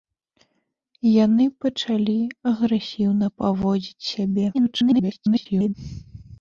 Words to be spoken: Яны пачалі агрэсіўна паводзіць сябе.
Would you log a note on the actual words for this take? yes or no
yes